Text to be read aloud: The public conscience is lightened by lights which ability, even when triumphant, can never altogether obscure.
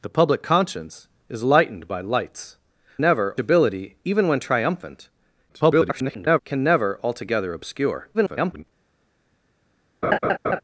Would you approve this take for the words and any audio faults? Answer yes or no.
no